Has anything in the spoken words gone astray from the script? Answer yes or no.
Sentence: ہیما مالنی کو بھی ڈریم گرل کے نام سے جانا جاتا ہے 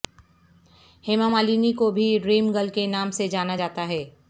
no